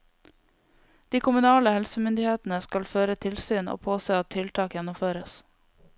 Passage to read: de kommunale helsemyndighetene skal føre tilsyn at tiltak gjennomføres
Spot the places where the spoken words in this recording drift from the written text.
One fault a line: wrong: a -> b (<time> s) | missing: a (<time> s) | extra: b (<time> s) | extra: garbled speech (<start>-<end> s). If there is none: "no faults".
extra: og påse (3.7 s)